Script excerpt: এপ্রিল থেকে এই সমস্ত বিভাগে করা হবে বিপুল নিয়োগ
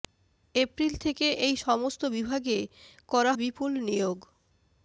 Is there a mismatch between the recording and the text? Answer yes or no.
yes